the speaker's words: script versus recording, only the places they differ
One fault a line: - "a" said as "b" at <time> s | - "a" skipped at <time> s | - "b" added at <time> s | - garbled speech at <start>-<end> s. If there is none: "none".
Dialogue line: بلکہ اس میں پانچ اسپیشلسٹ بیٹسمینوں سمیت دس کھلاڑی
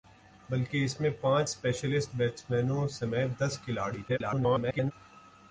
- garbled speech at 4.1-4.9 s